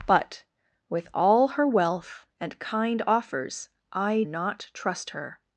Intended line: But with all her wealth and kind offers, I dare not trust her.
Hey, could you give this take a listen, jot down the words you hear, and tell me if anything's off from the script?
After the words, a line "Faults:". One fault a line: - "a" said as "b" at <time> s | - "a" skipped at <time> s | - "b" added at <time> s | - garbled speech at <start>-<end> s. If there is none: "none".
But with all her wealth and kind offers, I not trust her.
Faults:
- "dare" skipped at 4.2 s